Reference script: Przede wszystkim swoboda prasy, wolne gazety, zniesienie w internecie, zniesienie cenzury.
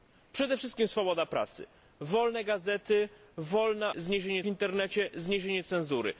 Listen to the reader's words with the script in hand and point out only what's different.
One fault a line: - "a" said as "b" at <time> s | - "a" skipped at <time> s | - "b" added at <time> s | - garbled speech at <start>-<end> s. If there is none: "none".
none